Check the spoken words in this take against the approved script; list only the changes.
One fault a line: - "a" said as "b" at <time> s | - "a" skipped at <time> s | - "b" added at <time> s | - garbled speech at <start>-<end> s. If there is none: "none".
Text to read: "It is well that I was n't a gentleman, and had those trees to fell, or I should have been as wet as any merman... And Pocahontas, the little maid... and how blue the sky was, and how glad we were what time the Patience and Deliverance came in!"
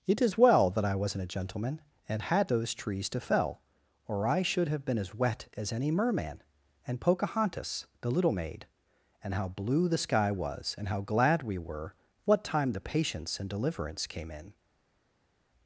none